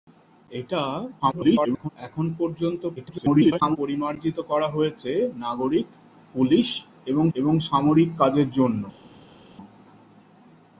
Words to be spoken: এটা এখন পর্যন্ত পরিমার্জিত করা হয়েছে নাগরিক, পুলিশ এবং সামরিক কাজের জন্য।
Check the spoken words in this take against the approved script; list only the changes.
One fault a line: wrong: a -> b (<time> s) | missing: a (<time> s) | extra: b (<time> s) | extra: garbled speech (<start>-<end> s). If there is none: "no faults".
extra: garbled speech (1.2-1.9 s)
extra: garbled speech (3.0-3.8 s)
extra: এবং (7.3 s)